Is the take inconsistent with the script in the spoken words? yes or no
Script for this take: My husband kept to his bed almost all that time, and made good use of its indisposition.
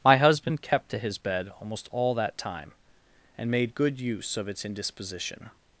no